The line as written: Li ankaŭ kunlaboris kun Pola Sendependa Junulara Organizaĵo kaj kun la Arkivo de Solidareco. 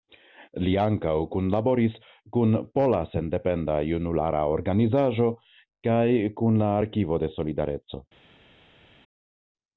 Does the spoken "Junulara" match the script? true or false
true